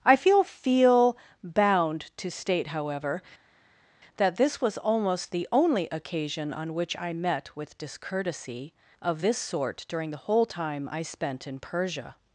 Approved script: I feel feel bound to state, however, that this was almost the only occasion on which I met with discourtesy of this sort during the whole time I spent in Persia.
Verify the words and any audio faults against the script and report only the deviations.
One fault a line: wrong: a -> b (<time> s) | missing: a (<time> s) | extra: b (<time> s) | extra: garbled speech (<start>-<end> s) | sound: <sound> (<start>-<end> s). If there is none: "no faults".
no faults